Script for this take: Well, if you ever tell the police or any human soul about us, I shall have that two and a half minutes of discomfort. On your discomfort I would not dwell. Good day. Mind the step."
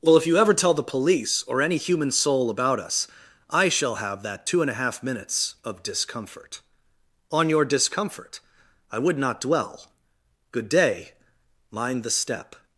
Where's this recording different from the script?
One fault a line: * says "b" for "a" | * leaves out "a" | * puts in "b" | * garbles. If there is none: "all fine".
all fine